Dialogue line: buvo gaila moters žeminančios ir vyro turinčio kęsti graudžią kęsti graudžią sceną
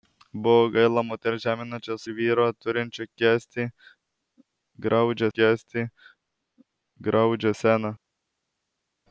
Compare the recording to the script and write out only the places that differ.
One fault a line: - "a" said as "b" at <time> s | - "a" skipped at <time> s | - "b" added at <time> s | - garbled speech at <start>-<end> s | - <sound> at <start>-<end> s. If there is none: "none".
none